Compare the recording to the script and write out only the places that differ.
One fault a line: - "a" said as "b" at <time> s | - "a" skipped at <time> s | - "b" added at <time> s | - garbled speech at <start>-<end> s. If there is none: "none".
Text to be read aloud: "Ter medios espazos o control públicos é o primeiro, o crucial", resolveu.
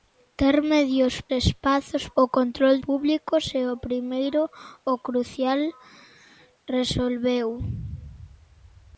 none